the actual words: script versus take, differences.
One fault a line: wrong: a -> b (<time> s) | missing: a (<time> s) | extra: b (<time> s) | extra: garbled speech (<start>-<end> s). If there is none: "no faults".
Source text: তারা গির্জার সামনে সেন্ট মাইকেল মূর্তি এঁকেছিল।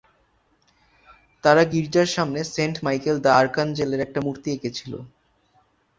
extra: দ্য আর্কাঞ্জেলের একটা (3.2 s)